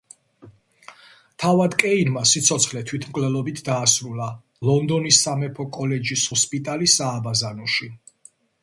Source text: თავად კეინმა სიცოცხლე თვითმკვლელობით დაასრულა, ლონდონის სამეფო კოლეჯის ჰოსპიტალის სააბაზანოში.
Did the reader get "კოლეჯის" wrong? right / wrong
right